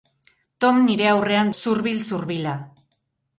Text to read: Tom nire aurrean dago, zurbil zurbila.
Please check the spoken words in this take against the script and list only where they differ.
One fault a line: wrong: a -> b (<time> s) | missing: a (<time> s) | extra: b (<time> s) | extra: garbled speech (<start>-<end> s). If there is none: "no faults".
missing: dago (1.5 s)